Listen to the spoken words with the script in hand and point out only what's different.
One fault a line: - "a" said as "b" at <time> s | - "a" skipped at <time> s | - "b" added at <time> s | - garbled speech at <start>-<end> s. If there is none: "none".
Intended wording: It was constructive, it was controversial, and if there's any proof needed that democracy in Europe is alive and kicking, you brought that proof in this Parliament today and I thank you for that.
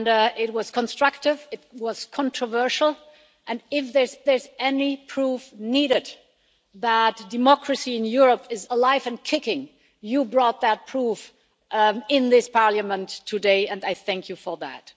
- "there's" added at 4.3 s